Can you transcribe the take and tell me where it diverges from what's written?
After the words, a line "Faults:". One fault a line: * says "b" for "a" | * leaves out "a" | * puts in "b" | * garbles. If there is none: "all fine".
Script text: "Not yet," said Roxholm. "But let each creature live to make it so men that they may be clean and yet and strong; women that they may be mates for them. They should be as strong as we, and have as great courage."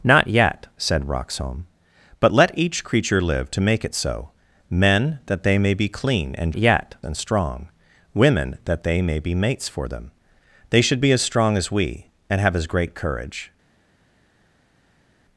"Not yet," said Roxholm. "But let each creature live to make it so men that they may be clean and yet and strong; women that they may be mates for them. They should be as strong as we, and have as great courage."
Faults:
all fine